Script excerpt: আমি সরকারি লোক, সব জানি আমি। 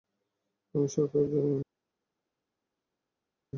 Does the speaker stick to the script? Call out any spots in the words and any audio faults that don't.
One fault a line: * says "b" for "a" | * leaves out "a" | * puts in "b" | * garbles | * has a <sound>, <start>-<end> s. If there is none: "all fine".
* leaves out "লোক সব"